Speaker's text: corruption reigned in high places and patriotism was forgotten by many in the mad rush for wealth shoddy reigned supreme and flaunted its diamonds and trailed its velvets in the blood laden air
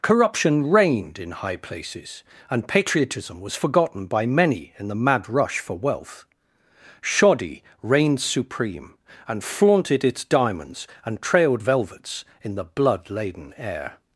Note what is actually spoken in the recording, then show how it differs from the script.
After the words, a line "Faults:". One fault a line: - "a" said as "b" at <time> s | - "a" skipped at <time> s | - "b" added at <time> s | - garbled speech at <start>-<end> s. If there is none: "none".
corruption reigned in high places and patriotism was forgotten by many in the mad rush for wealth shoddy reigned supreme and flaunted its diamonds and trailed velvets in the blood laden air
Faults:
- "its" skipped at 11.6 s